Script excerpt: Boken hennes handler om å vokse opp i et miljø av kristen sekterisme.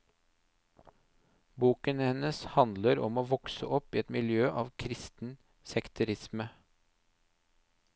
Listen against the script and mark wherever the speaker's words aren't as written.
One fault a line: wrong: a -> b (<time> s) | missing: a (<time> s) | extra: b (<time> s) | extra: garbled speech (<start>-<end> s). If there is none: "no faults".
no faults